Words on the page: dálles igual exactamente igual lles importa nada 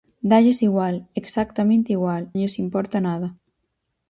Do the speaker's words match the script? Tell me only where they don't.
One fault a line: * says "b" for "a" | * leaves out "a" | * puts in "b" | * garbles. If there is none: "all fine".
all fine